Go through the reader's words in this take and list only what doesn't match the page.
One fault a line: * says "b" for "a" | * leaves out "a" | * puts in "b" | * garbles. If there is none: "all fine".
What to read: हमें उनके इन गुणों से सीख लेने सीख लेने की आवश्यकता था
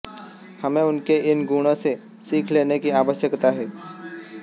* leaves out "सीख लेने"
* says "है" for "था"